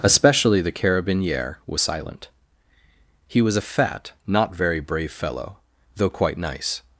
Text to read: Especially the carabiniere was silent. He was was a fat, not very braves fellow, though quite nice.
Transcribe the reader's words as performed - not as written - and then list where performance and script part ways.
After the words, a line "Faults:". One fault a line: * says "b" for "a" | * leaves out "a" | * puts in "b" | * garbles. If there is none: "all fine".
Especially the carabiniere was silent. He was a fat, not very brave fellow, though quite nice.
Faults:
* leaves out "was"
* says "brave" for "braves"